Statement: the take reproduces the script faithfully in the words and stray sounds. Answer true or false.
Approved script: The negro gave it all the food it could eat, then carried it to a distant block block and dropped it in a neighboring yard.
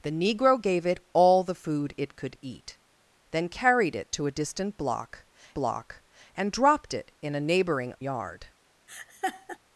false